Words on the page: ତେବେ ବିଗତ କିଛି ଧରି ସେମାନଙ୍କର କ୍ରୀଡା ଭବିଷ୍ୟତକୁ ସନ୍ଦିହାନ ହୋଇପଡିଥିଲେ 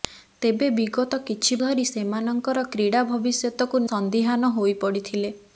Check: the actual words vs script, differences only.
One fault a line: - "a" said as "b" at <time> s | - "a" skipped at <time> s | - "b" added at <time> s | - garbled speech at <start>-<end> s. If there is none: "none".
none